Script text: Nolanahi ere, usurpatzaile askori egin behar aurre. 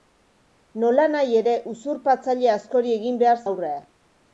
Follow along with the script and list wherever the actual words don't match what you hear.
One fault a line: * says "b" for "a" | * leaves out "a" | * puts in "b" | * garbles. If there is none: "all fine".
all fine